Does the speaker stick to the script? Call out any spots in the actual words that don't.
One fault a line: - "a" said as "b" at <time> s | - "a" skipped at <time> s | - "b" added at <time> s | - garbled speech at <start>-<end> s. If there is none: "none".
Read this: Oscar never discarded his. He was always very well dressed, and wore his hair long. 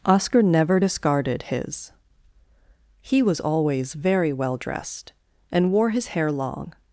none